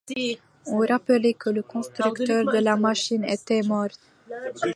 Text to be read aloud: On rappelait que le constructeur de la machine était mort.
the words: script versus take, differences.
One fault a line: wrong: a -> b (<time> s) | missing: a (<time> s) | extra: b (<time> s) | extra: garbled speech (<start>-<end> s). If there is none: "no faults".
no faults